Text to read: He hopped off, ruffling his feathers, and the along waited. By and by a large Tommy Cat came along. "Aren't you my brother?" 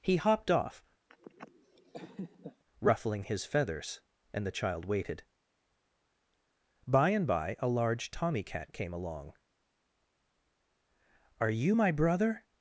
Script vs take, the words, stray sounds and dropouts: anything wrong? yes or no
yes